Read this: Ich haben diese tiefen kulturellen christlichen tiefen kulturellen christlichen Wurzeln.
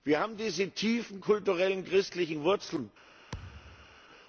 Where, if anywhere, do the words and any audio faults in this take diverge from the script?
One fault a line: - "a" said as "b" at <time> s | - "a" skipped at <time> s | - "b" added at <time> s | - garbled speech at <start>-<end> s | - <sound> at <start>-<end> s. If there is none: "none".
- "Ich" said as "Wir" at 0.0 s
- "tiefen kulturellen christlichen" skipped at 2.4 s
- thud at 3.3-4.0 s